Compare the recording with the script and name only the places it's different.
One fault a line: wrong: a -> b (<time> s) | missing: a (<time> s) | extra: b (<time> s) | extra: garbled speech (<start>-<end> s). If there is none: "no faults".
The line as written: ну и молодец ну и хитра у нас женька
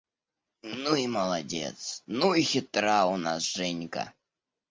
no faults